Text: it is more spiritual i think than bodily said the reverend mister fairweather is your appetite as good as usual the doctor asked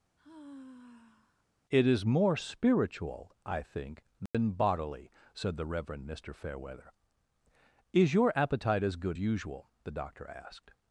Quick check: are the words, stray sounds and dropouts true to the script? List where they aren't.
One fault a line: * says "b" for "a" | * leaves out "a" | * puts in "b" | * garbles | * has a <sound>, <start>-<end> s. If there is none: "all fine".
* has a sigh, 0.2-1.4 s
* has a dropout, 4.3-4.3 s
* leaves out "as"